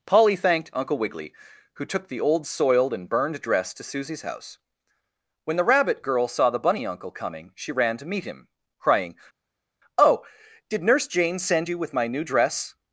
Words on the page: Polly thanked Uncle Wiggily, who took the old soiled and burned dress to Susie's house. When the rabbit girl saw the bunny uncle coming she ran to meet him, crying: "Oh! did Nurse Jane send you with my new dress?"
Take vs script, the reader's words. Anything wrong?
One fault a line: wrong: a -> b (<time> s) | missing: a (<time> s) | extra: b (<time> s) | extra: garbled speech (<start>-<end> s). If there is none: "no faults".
no faults